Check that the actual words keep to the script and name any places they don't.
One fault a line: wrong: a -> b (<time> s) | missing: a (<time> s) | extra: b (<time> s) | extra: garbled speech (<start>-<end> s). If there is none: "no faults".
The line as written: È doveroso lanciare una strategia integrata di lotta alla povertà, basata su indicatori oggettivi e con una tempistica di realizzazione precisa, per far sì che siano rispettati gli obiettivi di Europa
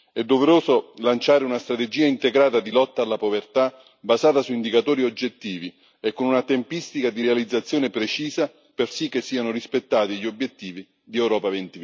missing: far (8.9 s)